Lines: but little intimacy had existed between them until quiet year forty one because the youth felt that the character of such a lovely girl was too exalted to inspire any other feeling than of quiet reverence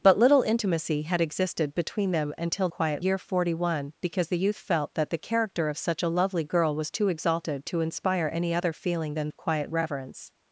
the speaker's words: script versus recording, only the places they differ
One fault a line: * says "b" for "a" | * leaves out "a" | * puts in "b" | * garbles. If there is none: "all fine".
all fine